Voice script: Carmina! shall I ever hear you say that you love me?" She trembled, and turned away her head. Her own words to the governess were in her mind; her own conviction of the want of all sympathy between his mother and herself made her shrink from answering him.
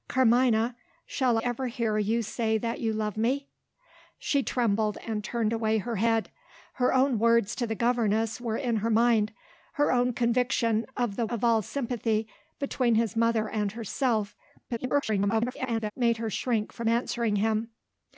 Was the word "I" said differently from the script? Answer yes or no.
yes